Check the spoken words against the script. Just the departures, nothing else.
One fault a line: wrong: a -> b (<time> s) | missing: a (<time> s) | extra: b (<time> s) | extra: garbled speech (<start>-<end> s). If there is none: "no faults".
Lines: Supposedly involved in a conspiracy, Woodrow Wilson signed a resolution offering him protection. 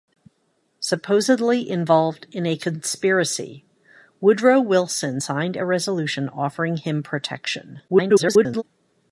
extra: garbled speech (7.9-8.6 s)